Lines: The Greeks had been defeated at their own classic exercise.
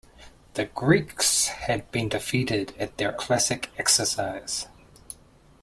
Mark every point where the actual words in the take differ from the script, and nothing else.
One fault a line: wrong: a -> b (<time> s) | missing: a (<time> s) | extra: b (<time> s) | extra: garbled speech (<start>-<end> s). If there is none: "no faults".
missing: own (3.2 s)